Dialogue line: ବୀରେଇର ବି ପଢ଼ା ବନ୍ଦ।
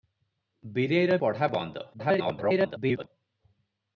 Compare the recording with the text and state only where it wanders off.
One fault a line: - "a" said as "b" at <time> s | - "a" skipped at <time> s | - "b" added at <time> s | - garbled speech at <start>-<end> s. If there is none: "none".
- "ବି" skipped at 1.2 s
- garbled speech at 1.9-3.1 s